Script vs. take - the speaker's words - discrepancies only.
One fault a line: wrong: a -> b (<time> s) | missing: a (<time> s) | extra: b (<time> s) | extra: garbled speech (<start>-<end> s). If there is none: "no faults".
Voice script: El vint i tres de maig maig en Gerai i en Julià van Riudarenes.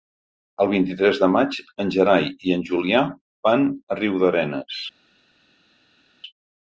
missing: maig (1.6 s)
extra: a (3.7 s)